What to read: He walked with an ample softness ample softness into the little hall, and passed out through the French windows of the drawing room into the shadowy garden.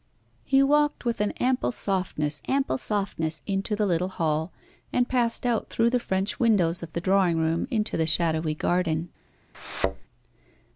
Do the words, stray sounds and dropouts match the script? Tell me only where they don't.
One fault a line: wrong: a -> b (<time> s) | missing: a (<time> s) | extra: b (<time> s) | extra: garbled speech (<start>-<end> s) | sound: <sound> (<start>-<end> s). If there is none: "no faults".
sound: thud (9.5-10.0 s)